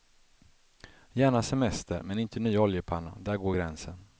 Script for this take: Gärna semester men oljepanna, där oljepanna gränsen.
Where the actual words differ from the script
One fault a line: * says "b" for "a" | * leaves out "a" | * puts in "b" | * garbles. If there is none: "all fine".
* puts in "inte ny"
* says "går" for "oljepanna"